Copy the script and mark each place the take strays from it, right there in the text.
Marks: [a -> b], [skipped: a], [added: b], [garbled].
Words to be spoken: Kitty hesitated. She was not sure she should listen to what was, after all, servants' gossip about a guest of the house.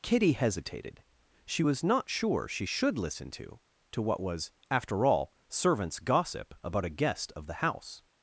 Kitty hesitated. She was not sure she should listen to [added: to] what was, after all, servants' gossip about a guest of the house.